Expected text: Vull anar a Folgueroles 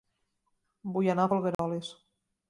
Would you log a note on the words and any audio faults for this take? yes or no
yes